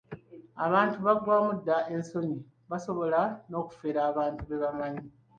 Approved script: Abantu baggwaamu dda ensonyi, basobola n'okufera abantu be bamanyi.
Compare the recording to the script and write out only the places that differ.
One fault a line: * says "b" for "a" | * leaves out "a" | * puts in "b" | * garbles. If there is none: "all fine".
all fine